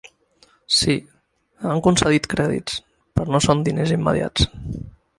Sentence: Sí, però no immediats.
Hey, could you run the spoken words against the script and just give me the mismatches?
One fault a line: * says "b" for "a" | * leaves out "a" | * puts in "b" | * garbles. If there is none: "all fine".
* puts in "han concedit crèdits"
* puts in "són diners"